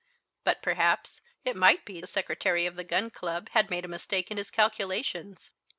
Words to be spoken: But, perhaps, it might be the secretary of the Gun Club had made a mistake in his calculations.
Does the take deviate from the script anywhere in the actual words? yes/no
no